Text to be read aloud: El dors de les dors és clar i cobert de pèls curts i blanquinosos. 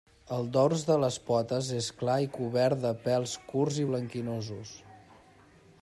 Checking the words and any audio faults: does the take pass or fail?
fail